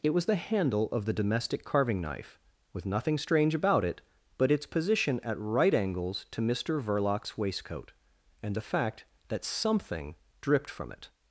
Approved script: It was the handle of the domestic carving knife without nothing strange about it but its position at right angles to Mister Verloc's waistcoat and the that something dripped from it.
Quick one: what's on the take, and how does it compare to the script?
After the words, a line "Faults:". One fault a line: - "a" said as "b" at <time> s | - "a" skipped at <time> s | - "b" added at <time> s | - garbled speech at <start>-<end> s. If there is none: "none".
It was the handle of the domestic carving knife with nothing strange about it but its position at right angles to Mister Verloc's waistcoat and the fact that something dripped from it.
Faults:
- "without" said as "with" at 2.7 s
- "fact" added at 8.7 s